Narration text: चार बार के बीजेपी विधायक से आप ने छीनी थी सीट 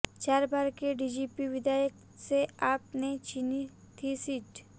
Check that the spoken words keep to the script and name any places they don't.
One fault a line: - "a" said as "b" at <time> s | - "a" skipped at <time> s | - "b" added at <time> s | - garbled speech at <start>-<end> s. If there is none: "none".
none